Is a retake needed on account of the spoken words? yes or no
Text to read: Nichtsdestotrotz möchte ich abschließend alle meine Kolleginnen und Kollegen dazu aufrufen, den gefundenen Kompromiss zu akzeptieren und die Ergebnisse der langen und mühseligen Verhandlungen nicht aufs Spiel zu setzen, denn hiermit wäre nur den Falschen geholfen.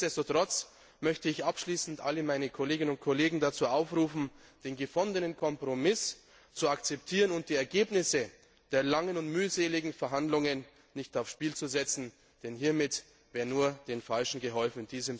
no